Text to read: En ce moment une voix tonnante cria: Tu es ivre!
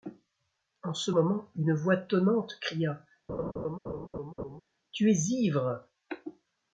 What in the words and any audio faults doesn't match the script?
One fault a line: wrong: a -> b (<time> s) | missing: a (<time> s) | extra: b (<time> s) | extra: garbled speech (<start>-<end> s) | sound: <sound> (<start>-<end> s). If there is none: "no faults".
sound: laugh (3.3-4.6 s)